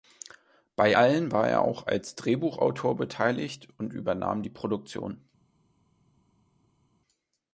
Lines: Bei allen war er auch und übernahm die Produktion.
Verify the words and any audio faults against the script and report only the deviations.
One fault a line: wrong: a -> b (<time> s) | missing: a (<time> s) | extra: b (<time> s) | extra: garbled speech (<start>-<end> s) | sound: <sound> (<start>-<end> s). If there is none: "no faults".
extra: als Drehbuchautor beteiligt (1.9 s)